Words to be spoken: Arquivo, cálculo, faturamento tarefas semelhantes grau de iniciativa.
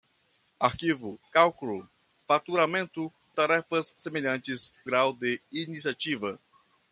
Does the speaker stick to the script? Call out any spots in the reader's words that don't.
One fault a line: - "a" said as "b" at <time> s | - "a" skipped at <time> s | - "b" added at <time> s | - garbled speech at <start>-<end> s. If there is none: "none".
none